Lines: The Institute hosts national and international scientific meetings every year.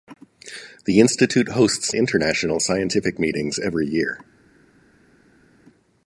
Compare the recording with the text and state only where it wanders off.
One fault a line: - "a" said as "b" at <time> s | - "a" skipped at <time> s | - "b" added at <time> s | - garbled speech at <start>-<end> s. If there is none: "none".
- "national and" skipped at 1.9 s